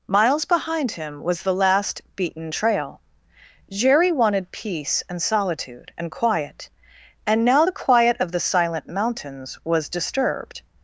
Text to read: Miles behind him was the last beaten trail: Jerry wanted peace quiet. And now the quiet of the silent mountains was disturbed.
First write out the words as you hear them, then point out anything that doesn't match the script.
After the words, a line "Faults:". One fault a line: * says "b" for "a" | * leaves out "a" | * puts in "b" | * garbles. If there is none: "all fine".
Miles behind him was the last beaten trail: Jerry wanted peace and solitude and quiet. And now the quiet of the silent mountains was disturbed.
Faults:
* puts in "and solitude and"